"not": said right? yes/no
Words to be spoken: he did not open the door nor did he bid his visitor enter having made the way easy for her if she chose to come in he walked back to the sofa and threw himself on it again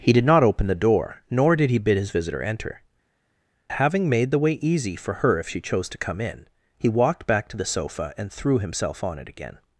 yes